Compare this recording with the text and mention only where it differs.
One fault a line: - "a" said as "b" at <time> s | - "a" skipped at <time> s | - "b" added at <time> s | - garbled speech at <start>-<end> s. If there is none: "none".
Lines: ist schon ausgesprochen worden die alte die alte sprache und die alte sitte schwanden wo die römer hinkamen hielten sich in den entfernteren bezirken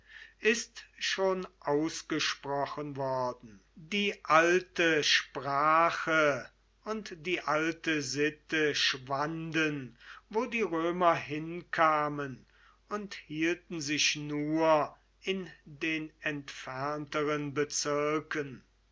- "die alte" skipped at 5.0 s
- "und" added at 12.9 s
- "nur" added at 14.2 s